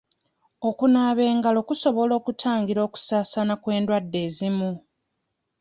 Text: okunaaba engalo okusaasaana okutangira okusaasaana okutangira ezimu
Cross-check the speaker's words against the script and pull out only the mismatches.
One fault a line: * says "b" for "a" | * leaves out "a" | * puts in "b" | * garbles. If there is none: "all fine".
* says "kusobola" for "okusaasaana"
* says "kw'endwadde" for "okutangira"